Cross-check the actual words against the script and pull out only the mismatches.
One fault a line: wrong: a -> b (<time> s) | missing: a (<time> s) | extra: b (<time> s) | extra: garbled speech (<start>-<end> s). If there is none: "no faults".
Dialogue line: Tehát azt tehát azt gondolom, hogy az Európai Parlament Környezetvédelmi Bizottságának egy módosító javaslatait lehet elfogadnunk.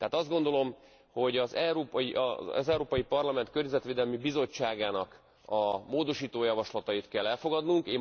missing: tehát azt (0.3 s)
wrong: egy -> a (5.5 s)
wrong: lehet -> kell (7.1 s)